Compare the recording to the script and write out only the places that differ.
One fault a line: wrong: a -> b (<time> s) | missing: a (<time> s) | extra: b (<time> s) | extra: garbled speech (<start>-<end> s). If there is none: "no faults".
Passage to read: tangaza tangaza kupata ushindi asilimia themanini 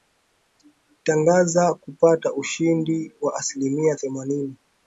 missing: tangaza (1.7 s)
extra: wa (3.2 s)